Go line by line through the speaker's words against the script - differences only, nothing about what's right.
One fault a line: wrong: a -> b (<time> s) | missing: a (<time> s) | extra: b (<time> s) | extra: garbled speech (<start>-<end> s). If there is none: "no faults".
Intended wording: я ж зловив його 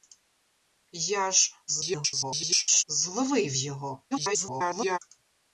extra: garbled speech (1.7-2.8 s)
extra: garbled speech (4.1-5.0 s)